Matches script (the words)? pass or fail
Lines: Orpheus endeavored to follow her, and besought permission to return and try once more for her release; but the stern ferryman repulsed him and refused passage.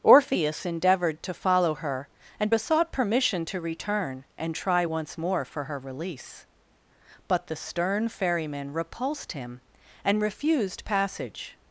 pass